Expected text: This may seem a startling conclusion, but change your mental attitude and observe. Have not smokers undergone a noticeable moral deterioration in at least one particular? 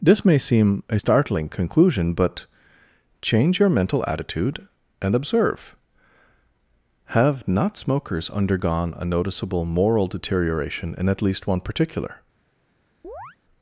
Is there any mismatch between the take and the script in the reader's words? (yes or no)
no